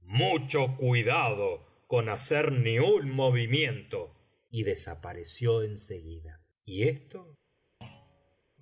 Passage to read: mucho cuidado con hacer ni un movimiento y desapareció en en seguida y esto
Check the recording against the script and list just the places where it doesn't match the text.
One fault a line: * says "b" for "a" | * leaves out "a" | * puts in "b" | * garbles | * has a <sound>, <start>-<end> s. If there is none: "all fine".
* leaves out "en"
* has a thud, 7.8-8.4 s